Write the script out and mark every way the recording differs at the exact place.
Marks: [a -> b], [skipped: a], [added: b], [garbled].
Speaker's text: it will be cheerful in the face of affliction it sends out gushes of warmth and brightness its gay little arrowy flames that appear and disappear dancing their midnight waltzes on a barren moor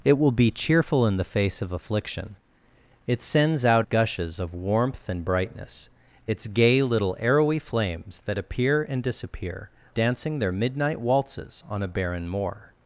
it will be cheerful in the face of affliction it sends out gushes of warmth and brightness its gay little arrowy flames that appear and disappear dancing their midnight waltzes on a barren moor